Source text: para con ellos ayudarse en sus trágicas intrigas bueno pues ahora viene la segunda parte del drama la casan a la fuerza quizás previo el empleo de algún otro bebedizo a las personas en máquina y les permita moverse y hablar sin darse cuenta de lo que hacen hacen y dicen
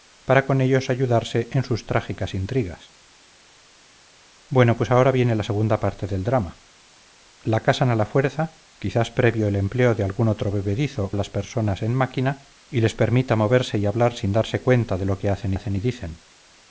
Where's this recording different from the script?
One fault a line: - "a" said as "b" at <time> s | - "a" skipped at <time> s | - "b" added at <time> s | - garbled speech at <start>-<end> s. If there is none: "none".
none